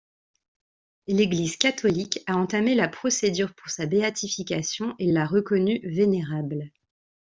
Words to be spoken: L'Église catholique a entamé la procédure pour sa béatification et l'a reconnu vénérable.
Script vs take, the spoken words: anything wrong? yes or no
no